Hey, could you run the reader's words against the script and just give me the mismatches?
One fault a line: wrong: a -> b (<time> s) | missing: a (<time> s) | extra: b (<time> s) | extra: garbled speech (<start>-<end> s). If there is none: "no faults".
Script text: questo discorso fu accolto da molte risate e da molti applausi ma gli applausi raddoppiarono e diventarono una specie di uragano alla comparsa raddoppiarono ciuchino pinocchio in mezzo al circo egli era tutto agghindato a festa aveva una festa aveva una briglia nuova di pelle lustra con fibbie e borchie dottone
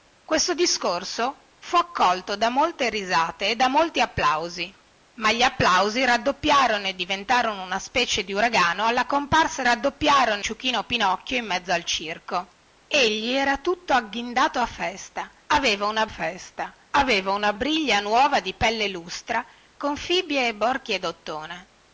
no faults